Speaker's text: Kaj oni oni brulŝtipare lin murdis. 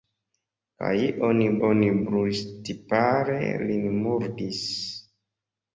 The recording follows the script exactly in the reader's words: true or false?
true